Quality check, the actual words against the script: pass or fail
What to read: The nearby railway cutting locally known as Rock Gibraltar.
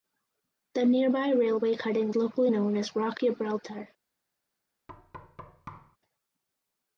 pass